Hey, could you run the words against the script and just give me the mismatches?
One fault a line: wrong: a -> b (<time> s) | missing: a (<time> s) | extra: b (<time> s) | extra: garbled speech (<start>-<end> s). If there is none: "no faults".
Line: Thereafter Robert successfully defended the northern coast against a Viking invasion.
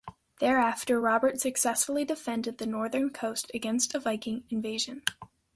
no faults